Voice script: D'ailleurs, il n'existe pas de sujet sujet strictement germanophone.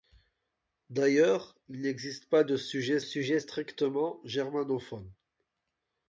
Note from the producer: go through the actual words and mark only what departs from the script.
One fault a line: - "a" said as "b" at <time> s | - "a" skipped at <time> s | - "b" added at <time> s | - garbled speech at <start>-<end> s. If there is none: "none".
none